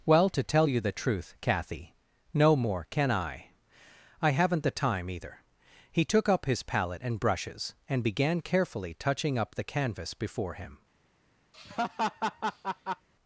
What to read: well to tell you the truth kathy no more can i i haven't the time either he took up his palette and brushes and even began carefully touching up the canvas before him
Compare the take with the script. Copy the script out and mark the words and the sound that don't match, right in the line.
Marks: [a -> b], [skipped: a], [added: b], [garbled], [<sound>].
well to tell you the truth kathy no more can i i haven't the time either he took up his palette and brushes and [skipped: even] began carefully touching up the canvas before him [laugh]